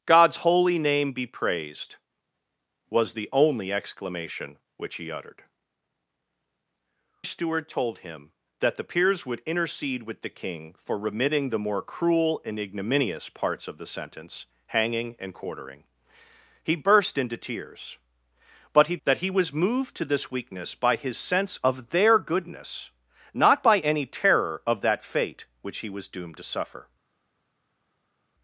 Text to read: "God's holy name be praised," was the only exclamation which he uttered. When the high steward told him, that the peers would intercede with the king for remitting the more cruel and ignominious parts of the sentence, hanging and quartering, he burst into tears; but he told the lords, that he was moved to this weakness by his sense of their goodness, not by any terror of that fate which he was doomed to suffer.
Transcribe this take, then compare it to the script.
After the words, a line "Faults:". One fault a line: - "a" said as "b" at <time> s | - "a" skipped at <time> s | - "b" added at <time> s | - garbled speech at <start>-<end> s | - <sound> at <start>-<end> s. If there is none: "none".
"God's holy name be praised," was the only exclamation which he uttered. Steward told him, that the peers would intercede with the king for remitting the more cruel and ignominious parts of the sentence, hanging and quartering, he burst into tears; but he that he was moved to this weakness by his sense of their goodness, not by any terror of that fate which he was doomed to suffer.
Faults:
- "When the high" skipped at 5.4 s
- "told the lords" skipped at 19.0 s